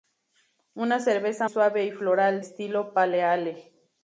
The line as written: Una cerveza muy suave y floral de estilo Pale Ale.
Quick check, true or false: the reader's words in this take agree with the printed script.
false